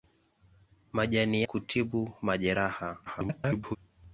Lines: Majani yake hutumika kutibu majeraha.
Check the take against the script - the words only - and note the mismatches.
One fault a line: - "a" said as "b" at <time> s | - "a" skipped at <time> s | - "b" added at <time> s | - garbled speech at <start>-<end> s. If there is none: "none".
- "yake hutumika" skipped at 1.4 s
- garbled speech at 3.1-3.8 s